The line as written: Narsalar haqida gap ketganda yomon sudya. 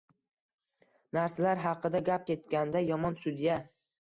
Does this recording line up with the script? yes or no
yes